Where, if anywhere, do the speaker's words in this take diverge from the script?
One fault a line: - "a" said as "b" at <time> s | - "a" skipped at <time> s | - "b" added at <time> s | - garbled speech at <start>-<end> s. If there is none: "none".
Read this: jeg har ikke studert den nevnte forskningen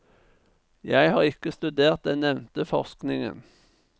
none